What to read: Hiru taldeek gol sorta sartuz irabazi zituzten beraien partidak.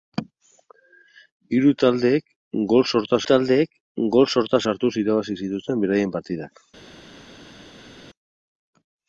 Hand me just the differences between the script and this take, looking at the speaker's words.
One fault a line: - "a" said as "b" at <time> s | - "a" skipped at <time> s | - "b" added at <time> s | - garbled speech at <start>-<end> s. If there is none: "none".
- "taldeek gol sorta" added at 3.3 s